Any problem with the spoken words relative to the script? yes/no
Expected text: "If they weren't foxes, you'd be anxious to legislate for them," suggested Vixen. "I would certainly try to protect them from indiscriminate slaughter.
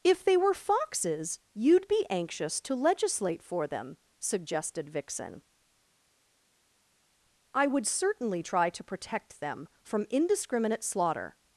yes